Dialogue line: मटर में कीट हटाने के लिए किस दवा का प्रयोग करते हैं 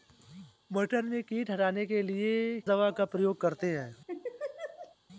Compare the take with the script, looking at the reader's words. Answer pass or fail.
fail